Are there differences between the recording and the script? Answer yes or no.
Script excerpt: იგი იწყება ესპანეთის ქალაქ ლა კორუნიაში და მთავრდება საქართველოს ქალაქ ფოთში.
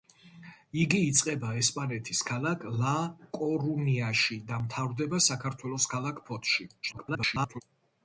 yes